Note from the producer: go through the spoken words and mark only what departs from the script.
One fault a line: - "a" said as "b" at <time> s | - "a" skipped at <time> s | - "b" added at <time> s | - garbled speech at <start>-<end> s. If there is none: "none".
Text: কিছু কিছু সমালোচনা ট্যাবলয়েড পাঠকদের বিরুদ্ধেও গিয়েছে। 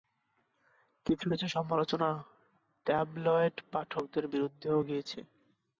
none